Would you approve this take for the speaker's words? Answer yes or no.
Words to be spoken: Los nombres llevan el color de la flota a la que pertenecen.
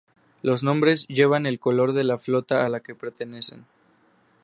yes